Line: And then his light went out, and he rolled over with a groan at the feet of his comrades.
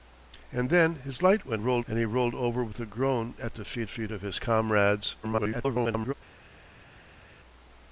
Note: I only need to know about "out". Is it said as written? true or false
false